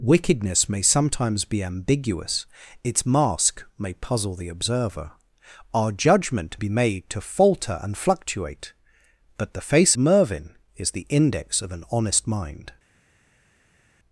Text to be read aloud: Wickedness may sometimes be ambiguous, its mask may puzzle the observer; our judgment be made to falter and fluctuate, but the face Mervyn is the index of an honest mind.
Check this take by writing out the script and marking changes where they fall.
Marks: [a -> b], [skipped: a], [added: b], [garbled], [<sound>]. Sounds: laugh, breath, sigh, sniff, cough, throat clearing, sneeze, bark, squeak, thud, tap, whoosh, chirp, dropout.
Wickedness may sometimes be ambiguous, its mask may puzzle the observer; our judgment be made to falter and fluctuate, but the face Mervyn is the index of an honest mind.